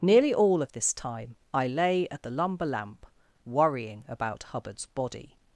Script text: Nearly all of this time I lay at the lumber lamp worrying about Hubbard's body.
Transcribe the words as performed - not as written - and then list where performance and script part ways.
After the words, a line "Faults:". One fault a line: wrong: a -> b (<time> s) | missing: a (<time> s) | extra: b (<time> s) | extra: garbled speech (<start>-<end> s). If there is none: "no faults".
Nearly all of this time I lay at the lumber lamp worrying about Hubbard's body.
Faults:
no faults